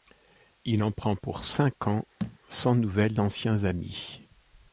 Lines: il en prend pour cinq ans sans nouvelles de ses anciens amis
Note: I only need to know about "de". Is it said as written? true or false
false